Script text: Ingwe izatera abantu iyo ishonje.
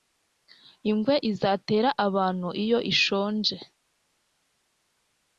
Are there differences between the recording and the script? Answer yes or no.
no